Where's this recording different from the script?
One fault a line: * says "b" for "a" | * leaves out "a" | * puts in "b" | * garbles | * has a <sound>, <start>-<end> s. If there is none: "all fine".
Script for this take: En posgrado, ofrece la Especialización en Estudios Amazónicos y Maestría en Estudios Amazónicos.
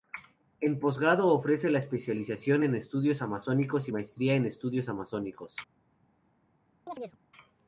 * has a chirp, 6.9-7.2 s